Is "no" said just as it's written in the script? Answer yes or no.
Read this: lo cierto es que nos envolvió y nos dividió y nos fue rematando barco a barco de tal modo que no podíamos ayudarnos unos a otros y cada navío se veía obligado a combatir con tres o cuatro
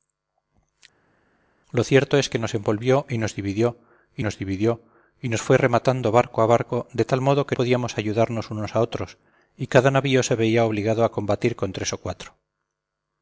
no